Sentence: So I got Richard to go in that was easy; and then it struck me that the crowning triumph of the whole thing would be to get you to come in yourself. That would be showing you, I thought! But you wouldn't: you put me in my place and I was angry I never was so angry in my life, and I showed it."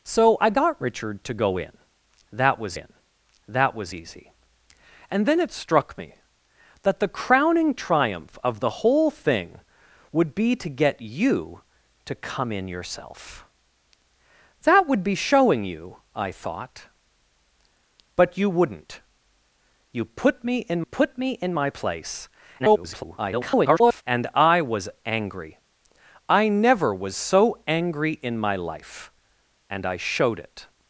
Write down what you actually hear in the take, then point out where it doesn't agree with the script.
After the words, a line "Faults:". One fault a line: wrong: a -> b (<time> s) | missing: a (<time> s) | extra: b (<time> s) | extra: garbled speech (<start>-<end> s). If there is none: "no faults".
So I got Richard to go in that was in that was easy; and then it struck me that the crowning triumph of the whole thing would be to get you to come in yourself. That would be showing you, I thought! But you wouldn't: you put me in put me in my place [garbled] and I was angry I never was so angry in my life, and I showed it."
Faults:
extra: in that was (2.7 s)
extra: put me in (20.8 s)
extra: garbled speech (22.6-24.0 s)